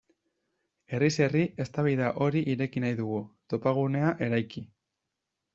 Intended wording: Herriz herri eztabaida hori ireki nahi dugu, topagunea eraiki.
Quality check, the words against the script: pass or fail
pass